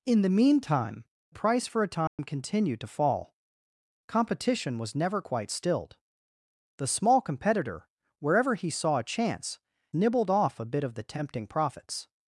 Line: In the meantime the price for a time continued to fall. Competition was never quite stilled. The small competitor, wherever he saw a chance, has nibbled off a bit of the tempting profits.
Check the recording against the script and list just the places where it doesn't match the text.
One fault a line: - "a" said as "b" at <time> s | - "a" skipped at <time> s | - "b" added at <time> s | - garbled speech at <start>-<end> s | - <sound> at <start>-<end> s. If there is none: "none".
- "the" skipped at 1.0 s
- dropout at 2.1-2.2 s
- "has" skipped at 9.6 s